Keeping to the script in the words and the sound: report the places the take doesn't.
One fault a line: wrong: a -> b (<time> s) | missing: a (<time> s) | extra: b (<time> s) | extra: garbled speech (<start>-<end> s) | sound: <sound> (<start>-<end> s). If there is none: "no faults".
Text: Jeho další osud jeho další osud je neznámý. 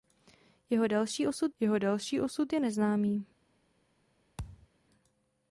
sound: thud (4.4-4.7 s)